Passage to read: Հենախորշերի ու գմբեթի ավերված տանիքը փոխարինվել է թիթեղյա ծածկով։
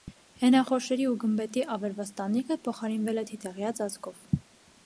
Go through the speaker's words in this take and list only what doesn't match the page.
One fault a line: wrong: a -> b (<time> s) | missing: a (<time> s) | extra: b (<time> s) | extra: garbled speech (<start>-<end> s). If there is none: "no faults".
no faults